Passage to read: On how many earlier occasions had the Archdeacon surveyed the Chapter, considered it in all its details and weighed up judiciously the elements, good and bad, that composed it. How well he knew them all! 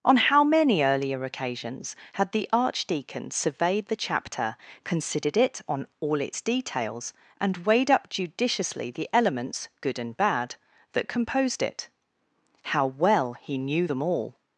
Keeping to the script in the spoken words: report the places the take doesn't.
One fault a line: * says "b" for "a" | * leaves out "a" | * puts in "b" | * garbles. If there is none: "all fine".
* says "on" for "in"